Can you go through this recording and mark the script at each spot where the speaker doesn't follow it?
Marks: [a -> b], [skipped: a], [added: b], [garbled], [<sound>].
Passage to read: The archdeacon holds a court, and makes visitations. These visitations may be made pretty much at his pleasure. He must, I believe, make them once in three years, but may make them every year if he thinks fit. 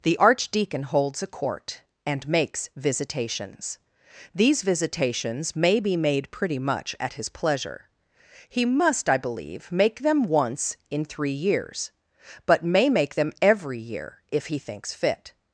The archdeacon holds a court, and makes visitations. These visitations may be made pretty much at his pleasure. He must, I believe, make them once in three years, but may make them every year if he thinks fit.